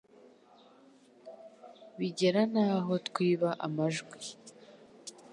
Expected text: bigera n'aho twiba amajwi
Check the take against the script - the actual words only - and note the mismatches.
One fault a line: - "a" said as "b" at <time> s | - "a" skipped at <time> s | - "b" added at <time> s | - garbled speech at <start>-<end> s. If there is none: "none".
none